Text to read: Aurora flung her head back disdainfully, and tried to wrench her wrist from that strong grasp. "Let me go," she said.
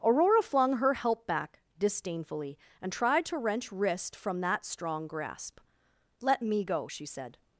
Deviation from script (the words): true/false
true